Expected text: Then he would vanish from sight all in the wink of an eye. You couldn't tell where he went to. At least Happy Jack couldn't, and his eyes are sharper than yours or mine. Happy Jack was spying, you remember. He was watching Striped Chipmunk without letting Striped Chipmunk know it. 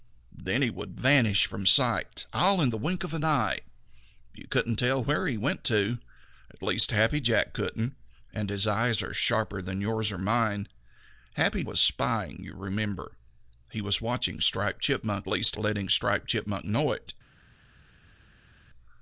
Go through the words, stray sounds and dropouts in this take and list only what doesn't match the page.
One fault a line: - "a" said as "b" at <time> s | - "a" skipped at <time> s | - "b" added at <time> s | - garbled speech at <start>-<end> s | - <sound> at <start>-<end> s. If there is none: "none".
- "Jack" skipped at 11.6 s
- "without" said as "least" at 15.3 s